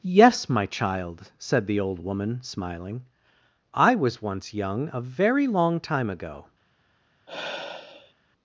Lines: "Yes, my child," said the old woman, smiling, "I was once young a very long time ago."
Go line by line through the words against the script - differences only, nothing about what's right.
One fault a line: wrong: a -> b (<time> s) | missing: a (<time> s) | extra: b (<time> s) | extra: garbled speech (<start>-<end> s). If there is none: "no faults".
no faults